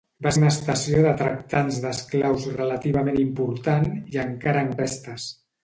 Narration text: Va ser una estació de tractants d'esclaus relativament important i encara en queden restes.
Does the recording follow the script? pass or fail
fail